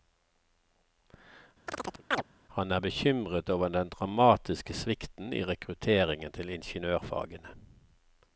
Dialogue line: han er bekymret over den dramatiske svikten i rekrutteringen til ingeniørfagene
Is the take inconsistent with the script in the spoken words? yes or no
no